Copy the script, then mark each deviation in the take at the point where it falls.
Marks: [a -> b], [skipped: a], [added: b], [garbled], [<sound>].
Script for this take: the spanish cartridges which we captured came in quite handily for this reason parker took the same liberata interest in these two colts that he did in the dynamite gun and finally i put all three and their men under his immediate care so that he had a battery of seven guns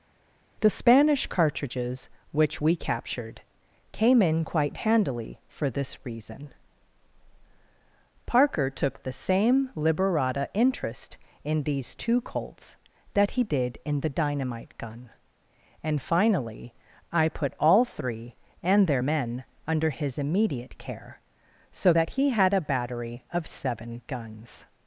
the spanish cartridges which we captured came in quite handily for this reason parker took the same liberata interest in these two colts that he did in the dynamite gun and finally i put all three and their men under his immediate care so that he had a battery of seven guns